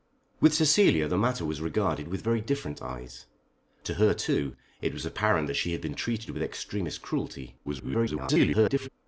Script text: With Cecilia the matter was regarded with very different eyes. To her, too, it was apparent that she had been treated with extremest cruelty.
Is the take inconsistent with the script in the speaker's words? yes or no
yes